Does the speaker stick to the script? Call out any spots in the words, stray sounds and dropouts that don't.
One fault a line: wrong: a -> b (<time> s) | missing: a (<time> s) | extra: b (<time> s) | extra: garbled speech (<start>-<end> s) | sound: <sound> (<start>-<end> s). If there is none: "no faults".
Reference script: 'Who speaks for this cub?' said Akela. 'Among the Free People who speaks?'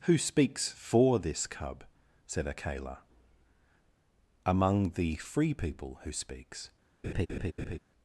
sound: laugh (7.0-7.8 s)